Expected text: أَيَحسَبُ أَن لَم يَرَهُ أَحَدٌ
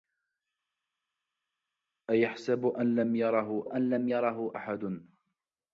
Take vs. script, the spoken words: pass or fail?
fail